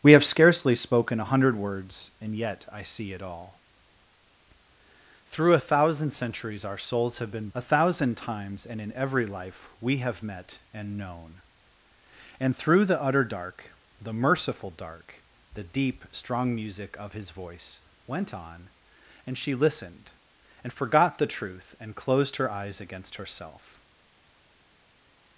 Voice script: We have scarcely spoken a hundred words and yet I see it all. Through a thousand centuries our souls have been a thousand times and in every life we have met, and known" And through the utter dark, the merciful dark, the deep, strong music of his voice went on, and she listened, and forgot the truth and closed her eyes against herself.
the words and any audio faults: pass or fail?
pass